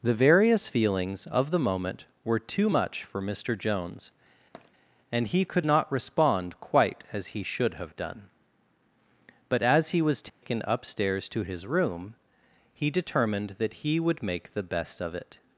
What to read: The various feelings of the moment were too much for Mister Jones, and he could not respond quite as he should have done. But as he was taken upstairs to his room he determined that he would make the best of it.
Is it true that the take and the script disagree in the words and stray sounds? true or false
true